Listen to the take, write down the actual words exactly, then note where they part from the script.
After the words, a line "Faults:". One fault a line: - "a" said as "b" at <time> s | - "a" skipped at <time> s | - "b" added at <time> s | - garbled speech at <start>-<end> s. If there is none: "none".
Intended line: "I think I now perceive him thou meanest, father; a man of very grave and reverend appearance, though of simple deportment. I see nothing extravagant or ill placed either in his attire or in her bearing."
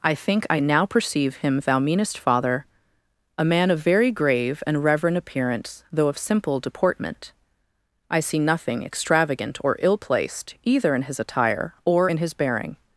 "I think I now perceive him thou meanest, father; a man of very grave and reverend appearance, though of simple deportment. I see nothing extravagant or ill placed either in his attire or in his bearing."
Faults:
- "her" said as "his" at 12.2 s